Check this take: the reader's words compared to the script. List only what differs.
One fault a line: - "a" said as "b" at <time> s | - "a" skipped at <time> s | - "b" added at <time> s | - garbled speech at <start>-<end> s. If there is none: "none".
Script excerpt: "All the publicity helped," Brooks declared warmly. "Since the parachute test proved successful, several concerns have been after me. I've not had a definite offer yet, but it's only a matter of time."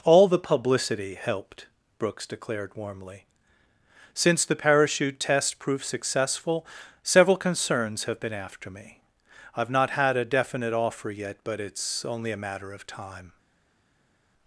none